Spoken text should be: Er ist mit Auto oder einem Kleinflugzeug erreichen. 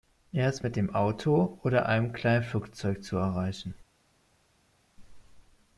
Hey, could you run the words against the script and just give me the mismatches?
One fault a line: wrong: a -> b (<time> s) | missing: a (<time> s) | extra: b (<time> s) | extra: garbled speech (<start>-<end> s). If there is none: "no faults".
extra: dem (0.8 s)
extra: zu (3.0 s)